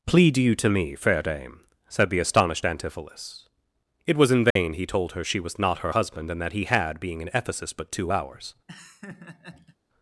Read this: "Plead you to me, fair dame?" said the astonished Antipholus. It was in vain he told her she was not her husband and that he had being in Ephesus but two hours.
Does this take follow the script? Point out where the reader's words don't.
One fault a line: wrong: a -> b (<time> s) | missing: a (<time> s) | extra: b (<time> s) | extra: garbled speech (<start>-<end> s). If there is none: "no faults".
no faults